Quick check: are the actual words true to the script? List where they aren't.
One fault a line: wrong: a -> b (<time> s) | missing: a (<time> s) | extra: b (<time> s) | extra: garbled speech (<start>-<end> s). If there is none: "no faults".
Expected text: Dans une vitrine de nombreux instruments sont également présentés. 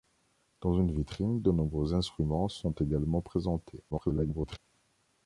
extra: garbled speech (3.9-4.6 s)